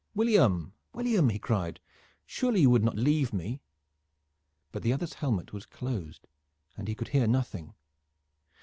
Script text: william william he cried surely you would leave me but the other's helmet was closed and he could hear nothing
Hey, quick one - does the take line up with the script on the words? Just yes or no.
no